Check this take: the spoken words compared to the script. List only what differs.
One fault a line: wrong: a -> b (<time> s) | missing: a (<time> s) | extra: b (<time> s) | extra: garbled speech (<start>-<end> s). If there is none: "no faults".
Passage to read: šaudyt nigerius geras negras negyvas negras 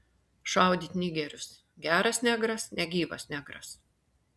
no faults